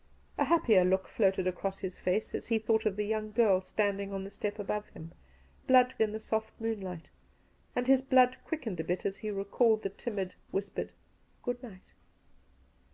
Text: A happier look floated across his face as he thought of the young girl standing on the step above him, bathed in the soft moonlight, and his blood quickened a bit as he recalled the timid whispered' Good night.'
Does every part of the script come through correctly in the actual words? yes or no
no